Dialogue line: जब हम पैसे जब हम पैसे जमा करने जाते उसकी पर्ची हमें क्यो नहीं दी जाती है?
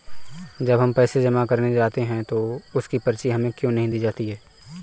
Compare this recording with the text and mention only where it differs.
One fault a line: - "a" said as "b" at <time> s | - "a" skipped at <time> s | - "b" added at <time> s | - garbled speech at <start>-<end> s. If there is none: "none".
- "जब हम पैसे" skipped at 1.2 s
- "हैं तो" added at 2.0 s